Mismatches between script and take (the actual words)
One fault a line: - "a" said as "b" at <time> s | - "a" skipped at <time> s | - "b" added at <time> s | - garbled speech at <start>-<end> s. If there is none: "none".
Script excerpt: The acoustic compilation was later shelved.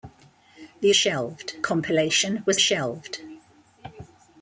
- "acoustic" said as "shelved" at 0.9 s
- "later" skipped at 2.6 s